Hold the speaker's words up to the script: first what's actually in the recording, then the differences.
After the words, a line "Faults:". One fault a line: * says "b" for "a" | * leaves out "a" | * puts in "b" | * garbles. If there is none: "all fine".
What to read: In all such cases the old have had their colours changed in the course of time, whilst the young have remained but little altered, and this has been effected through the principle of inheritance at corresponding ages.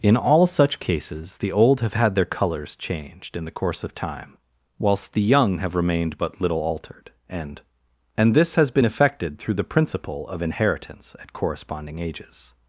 In all such cases the old have had their colours changed in the course of time, whilst the young have remained but little altered, and and this has been effected through the principle of inheritance at corresponding ages.
Faults:
* puts in "and"